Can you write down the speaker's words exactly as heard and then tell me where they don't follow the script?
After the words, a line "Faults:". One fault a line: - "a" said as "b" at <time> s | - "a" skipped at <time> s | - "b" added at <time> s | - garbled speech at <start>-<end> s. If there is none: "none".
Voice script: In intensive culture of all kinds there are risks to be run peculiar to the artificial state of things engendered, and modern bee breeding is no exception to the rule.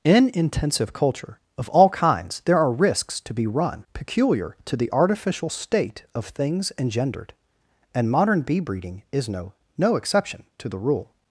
In intensive culture of all kinds there are risks to be run peculiar to the artificial state of things engendered, and modern bee breeding is no no exception to the rule.
Faults:
- "no" added at 9.8 s